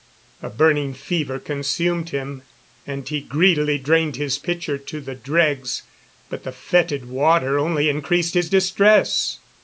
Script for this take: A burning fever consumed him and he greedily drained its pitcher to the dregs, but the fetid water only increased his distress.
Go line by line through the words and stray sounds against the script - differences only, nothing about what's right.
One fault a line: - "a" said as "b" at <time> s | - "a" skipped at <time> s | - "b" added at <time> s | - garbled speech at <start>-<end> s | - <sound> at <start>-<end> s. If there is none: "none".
- "its" said as "his" at 4.2 s